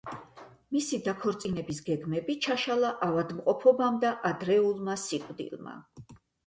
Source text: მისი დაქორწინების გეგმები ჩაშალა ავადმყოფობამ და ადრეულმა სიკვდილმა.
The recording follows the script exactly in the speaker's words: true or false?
true